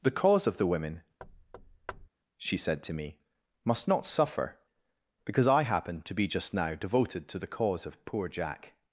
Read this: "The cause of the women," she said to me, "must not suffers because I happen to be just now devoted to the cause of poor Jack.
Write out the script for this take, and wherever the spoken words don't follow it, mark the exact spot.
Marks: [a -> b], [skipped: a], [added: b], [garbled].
"The cause of the women," she said to me, "must not [suffers -> suffer] because I happen to be just now devoted to the cause of poor Jack.